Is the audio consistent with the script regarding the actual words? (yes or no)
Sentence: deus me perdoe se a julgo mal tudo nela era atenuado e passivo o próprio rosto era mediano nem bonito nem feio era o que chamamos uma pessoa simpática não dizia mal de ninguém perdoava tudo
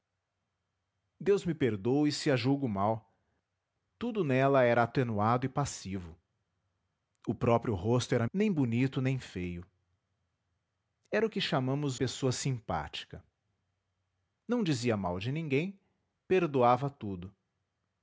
no